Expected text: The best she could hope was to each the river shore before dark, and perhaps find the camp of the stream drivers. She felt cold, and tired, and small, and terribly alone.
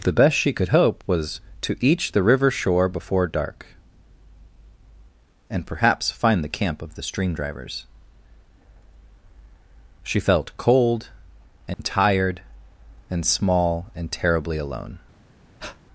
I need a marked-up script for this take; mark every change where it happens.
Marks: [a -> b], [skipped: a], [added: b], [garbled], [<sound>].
The best she could hope was to each the river shore before dark, and perhaps find the camp of the stream drivers. She felt cold, and [dropout] tired, and small, and terribly alone. [breath]